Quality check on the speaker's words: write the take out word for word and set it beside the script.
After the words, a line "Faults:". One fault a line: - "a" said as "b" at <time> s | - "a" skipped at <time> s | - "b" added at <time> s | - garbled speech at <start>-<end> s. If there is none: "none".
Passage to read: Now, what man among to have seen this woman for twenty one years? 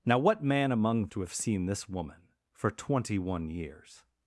Now, what man among to have seen this woman for twenty one years?
Faults:
none